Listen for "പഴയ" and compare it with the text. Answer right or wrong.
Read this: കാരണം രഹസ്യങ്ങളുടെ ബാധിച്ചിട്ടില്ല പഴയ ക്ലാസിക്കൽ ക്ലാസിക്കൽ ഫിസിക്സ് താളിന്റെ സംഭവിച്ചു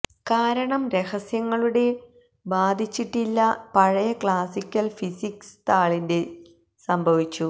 right